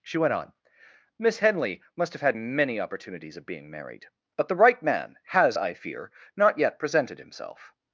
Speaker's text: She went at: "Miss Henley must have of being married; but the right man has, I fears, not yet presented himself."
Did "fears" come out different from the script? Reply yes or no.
yes